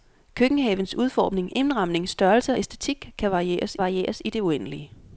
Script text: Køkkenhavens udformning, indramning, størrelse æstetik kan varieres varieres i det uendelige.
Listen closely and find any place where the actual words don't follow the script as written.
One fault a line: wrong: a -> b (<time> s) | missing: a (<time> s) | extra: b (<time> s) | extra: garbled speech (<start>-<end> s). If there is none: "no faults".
no faults